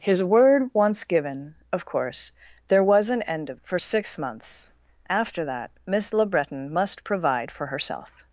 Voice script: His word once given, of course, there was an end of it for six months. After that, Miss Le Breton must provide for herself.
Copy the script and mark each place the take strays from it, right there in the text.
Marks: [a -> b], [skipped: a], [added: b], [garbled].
His word once given, of course, there was an end of [skipped: it] for six months. After that, Miss Le Breton must provide for herself.